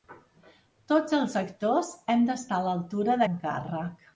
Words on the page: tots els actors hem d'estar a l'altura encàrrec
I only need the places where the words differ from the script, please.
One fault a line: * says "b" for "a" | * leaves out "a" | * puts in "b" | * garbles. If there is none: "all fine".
all fine